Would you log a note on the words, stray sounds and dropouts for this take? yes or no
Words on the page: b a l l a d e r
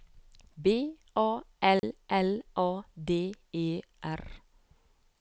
yes